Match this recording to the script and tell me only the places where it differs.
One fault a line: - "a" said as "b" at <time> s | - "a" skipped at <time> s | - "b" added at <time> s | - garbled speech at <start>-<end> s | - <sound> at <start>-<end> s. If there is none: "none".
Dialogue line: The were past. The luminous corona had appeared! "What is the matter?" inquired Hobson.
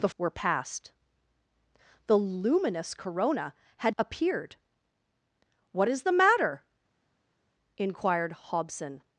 none